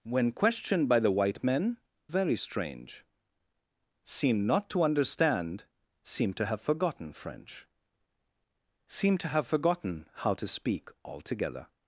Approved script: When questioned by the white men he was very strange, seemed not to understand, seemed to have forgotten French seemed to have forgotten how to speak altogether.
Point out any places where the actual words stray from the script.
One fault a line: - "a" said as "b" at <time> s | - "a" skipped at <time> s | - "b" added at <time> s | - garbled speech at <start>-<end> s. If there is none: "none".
- "he was" skipped at 1.8 s